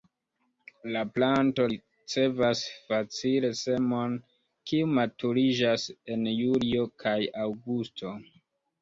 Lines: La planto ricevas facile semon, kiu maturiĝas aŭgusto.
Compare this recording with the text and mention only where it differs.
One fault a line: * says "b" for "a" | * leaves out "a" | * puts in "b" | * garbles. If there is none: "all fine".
* puts in "en julio kaj"